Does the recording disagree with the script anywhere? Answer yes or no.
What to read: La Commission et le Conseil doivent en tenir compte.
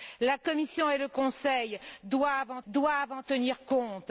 yes